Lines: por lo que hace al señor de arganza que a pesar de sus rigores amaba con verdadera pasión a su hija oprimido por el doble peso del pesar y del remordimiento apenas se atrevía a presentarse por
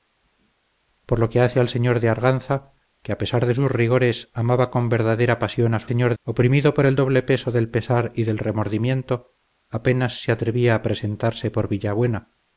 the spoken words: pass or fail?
fail